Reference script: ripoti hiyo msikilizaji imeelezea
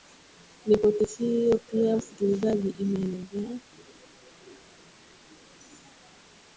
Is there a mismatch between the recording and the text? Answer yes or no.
yes